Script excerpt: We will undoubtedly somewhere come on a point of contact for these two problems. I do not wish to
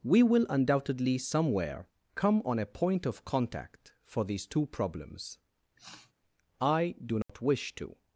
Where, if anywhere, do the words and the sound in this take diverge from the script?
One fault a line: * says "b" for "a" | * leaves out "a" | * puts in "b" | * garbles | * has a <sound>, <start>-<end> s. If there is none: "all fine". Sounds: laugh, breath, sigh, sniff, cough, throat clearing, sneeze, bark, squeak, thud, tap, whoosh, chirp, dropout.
* has a sniff, 5.8-6.1 s
* has a dropout, 7.2-7.3 s